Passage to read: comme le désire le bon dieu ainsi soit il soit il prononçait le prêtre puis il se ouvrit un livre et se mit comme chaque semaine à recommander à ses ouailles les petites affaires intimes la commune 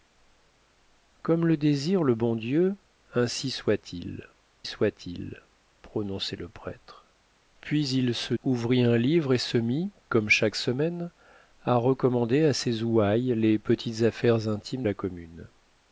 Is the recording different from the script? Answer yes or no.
no